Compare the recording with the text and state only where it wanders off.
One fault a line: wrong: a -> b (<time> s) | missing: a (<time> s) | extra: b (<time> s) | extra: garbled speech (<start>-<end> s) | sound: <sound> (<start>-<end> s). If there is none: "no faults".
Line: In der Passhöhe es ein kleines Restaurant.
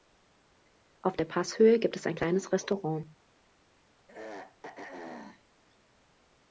wrong: In -> Auf (1.0 s)
extra: gibt (1.8 s)
sound: throat clearing (4.1-5.4 s)